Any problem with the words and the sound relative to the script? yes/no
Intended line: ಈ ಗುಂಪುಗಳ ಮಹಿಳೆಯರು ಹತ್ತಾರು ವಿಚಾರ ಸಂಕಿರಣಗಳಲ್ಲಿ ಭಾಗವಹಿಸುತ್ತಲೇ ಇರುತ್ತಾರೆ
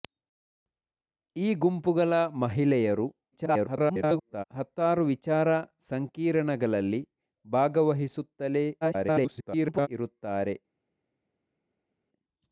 yes